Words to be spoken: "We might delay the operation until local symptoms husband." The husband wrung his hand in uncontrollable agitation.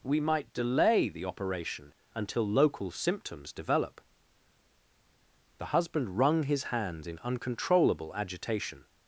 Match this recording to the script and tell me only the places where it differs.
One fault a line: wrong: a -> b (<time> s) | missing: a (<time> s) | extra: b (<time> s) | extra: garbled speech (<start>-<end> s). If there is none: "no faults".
wrong: husband -> develop (3.5 s)
wrong: hand -> hands (6.7 s)